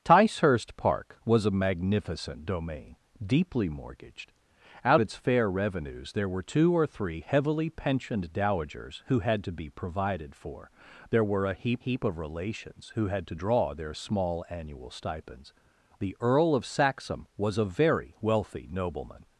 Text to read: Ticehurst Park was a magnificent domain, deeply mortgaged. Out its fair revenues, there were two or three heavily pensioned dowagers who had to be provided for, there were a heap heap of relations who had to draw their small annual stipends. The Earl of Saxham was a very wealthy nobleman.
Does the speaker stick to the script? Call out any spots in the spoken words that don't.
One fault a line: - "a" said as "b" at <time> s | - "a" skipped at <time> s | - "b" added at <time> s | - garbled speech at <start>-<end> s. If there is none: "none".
none